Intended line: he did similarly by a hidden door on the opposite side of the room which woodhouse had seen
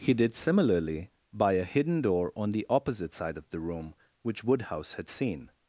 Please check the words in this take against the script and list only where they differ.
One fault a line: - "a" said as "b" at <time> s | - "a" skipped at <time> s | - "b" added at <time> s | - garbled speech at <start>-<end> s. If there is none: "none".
none